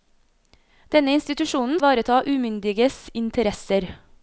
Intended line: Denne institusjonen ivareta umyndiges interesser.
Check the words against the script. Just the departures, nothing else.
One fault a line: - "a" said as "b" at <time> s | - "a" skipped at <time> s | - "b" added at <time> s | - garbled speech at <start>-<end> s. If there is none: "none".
none